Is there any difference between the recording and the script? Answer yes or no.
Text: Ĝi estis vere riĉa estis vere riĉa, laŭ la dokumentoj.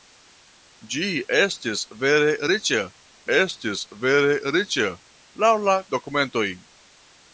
no